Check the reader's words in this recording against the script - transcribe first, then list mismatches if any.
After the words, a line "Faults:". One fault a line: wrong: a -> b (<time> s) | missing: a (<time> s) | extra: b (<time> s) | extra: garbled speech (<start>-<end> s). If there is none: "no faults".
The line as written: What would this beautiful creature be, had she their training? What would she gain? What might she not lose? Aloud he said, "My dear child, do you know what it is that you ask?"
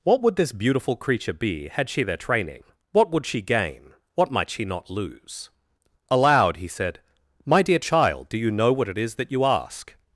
What would this beautiful creature be, had she their training? What would she gain? What might she not lose? Aloud he said, "My dear child, do you know what it is that you ask?"
Faults:
no faults